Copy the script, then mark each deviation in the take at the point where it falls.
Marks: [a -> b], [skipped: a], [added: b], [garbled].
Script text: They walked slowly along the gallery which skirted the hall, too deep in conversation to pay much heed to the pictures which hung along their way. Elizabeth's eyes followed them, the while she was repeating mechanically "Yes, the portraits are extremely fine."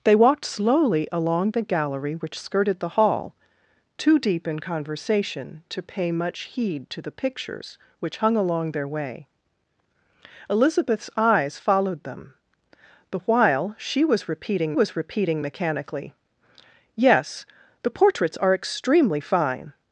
They walked slowly along the gallery which skirted the hall, too deep in conversation to pay much heed to the pictures which hung along their way. Elizabeth's eyes followed them, the while she was repeating [added: was repeating] mechanically "Yes, the portraits are extremely fine."